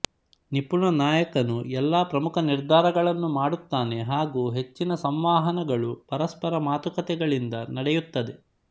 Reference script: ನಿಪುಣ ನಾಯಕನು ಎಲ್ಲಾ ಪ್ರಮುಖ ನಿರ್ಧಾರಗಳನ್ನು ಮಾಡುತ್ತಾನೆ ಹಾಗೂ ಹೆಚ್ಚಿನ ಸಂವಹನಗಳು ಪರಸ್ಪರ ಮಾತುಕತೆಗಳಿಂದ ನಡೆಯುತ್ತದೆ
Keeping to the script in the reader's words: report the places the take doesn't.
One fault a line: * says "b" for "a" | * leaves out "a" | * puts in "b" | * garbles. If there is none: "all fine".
all fine